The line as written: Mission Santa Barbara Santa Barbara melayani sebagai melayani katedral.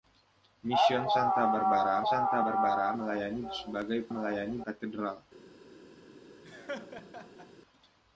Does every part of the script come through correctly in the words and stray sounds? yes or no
no